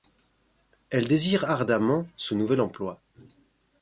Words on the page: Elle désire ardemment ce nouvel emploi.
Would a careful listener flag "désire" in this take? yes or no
no